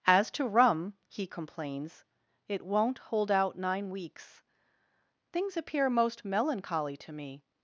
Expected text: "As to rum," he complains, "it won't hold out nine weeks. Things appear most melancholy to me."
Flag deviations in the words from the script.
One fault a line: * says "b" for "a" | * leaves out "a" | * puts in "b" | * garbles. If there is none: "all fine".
all fine